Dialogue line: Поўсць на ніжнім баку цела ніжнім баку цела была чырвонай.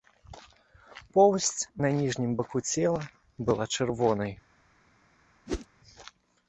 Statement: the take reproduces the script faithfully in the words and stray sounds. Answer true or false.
false